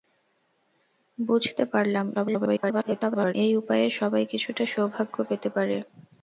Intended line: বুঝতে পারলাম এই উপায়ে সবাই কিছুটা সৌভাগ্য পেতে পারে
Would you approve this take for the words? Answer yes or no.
no